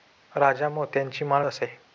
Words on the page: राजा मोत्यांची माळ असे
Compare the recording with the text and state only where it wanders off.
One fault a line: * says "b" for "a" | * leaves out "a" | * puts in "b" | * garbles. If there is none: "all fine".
all fine